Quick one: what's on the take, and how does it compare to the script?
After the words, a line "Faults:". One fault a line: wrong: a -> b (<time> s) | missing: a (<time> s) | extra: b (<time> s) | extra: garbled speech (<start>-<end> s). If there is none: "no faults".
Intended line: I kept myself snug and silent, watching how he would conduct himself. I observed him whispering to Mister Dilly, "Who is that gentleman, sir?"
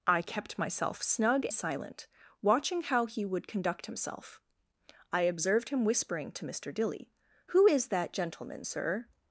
I kept myself snug silent, watching how he would conduct himself. I observed him whispering to Mister Dilly, "Who is that gentleman, sir?"
Faults:
missing: and (1.4 s)